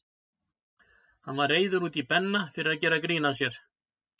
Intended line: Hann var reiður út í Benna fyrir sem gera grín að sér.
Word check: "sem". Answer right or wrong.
wrong